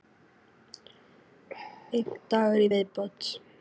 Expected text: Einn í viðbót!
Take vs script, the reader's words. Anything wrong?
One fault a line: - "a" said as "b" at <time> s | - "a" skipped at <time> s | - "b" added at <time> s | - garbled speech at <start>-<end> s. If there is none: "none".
- "dagur" added at 2.4 s